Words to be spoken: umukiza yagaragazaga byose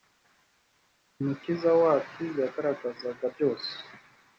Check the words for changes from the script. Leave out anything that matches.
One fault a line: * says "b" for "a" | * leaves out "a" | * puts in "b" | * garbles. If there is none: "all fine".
* puts in "wacu"